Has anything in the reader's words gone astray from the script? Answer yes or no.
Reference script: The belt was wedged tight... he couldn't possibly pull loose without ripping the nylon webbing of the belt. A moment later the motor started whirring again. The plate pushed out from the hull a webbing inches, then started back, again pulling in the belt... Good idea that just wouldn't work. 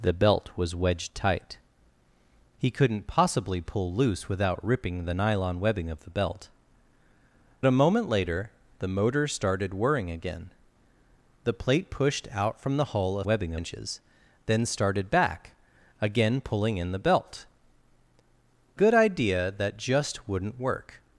no